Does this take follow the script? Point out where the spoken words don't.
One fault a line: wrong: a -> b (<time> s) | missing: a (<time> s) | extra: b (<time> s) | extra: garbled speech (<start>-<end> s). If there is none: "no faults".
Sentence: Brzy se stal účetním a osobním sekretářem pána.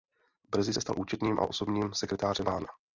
no faults